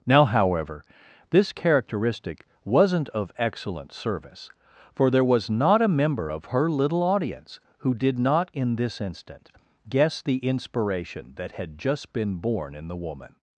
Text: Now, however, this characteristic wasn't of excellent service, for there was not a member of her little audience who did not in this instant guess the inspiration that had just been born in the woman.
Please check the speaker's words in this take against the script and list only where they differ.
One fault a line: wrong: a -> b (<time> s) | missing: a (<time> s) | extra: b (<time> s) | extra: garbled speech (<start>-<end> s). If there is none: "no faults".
no faults